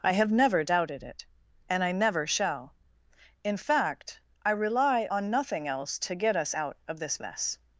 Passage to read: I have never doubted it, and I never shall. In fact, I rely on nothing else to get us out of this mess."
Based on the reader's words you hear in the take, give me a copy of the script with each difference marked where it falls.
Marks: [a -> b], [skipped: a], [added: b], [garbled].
I have never doubted it, and I never shall. In fact, I rely on nothing else to get us out of this mess."